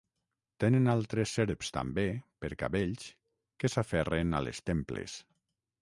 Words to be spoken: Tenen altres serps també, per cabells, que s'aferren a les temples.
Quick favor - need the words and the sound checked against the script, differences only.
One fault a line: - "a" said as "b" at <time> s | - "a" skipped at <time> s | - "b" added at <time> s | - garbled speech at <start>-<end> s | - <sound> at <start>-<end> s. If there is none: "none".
none